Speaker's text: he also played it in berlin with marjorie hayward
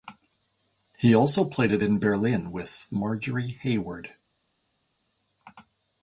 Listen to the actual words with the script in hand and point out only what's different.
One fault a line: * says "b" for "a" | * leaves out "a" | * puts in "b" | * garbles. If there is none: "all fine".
all fine